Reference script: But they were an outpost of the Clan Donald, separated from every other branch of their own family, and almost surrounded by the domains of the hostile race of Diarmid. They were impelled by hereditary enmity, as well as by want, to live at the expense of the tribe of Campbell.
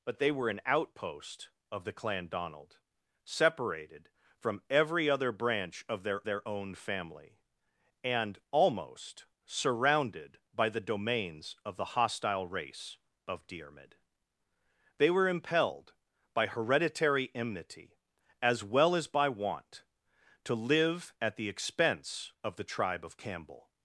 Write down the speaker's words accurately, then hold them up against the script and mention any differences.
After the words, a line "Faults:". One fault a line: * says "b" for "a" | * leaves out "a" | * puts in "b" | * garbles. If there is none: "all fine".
But they were an outpost of the Clan Donald, separated from every other branch of their their own family, and almost surrounded by the domains of the hostile race of Diarmid. They were impelled by hereditary enmity, as well as by want, to live at the expense of the tribe of Campbell.
Faults:
* puts in "their"